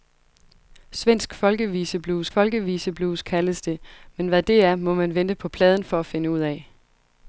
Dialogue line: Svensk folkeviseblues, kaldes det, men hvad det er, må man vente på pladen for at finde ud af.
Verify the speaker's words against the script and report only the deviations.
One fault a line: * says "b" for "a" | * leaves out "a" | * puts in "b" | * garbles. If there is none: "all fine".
* puts in "folkeviseblues"